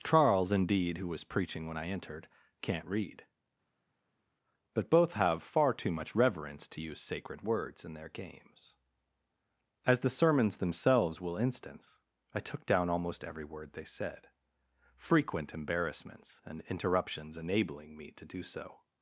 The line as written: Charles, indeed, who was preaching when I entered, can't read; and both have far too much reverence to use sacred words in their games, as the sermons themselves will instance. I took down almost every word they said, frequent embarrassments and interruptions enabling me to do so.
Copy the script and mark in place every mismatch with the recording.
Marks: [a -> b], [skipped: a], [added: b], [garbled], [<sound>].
Charles, indeed, who was preaching when I entered, can't read; [and -> but] both have far too much reverence to use sacred words in their games, as the sermons themselves will instance. I took down almost every word they said, frequent embarrassments and interruptions enabling me to do so.